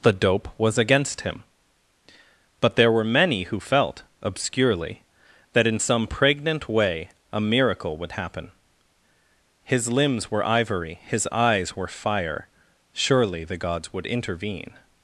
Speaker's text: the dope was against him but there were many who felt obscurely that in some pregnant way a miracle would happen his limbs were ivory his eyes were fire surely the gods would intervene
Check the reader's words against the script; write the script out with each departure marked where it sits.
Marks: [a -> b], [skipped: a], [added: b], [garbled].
the dope was against him but there were many who felt obscurely that in some pregnant way a miracle would happen his limbs were ivory his eyes were fire surely the gods would intervene